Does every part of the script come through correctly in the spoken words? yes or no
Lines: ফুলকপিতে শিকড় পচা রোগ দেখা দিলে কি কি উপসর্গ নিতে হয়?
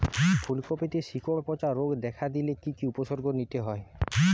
yes